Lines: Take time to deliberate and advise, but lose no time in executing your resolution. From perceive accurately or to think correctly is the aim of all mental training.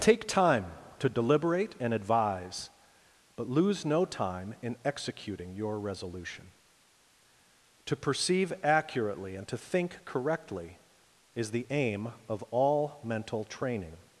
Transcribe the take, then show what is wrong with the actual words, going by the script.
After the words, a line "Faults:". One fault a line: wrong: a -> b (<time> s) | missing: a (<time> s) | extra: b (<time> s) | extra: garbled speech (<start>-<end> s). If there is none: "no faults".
Take time to deliberate and advise, but lose no time in executing your resolution. To perceive accurately and to think correctly is the aim of all mental training.
Faults:
wrong: From -> To (7.8 s)
wrong: or -> and (9.3 s)